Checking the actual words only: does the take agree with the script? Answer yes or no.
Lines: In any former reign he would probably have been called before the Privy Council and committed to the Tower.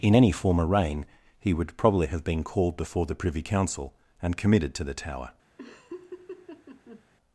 yes